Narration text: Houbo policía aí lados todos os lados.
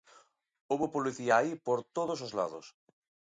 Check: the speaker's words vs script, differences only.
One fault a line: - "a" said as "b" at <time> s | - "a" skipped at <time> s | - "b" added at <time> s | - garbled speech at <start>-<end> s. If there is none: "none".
- "lados" said as "por" at 1.7 s